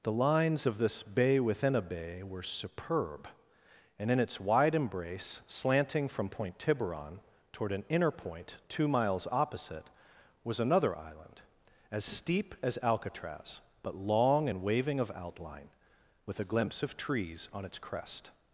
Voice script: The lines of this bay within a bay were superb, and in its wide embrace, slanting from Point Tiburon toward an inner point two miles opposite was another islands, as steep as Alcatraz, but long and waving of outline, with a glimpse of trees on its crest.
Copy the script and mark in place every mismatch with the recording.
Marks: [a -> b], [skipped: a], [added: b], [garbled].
The lines of this bay within a bay were superb, and in its wide embrace, slanting from Point Tiburon toward an inner point two miles opposite was another [islands, -> island] as steep as Alcatraz, but long and waving of outline, with a glimpse of trees on its crest.